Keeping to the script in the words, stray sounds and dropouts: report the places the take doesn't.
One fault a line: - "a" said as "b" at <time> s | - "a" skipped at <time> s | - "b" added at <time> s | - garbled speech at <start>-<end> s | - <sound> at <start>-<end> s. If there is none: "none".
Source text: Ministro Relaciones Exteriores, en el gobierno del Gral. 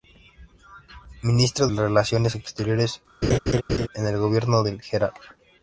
- laugh at 3.2-3.9 s